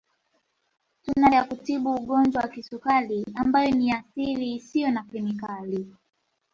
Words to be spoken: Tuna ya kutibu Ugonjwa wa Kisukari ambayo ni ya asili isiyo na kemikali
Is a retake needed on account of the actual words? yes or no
no